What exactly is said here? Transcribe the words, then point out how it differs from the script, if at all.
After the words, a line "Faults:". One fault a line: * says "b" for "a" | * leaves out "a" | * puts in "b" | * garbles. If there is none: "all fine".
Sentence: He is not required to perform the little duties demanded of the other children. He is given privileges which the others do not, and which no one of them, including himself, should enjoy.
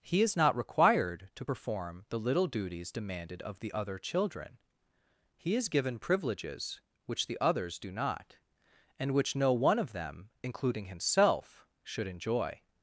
He is not required to perform the little duties demanded of the other children. He is given privileges which the others do not, and which no one of them, including himself, should enjoy.
Faults:
all fine